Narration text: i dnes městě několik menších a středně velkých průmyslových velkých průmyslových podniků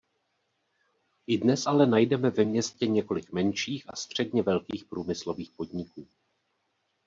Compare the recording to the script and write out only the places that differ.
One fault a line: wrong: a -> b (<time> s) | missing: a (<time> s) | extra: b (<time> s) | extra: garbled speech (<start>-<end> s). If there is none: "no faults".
extra: ale najdeme ve (1.7 s)
missing: velkých průmyslových (5.5 s)